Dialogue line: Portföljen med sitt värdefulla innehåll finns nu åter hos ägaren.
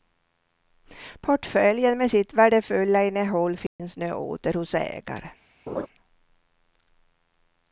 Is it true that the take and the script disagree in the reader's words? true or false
false